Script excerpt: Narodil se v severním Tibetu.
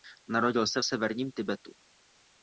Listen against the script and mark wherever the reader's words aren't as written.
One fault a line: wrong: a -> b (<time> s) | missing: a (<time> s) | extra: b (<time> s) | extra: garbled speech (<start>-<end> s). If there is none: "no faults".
no faults